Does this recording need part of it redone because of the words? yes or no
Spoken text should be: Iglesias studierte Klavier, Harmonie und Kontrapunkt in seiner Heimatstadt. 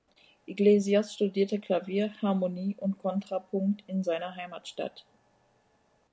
no